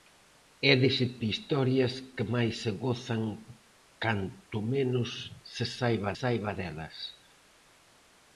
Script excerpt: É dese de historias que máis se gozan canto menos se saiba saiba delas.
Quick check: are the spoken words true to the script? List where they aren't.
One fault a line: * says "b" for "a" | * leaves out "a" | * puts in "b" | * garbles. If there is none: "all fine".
all fine